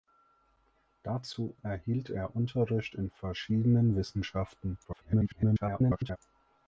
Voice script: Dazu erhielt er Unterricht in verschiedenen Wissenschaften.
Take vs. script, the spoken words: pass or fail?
fail